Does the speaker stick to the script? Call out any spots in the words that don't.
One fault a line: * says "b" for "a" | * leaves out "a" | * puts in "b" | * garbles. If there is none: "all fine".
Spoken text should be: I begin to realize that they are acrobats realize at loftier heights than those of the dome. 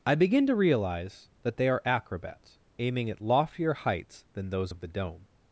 * says "aiming" for "realize"